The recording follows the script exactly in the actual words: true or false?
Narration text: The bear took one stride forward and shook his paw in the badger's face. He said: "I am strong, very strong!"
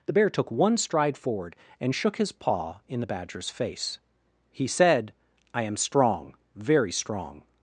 true